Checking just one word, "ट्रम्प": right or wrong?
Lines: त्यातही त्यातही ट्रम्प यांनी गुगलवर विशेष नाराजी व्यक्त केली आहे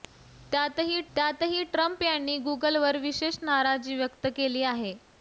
right